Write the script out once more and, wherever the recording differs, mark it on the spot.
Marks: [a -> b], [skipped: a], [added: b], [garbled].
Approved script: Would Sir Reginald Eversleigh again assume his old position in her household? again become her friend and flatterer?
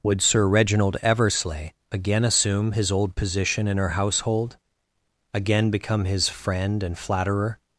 Would Sir Reginald Eversleigh again assume his old position in her household? again become [her -> his] friend and flatterer?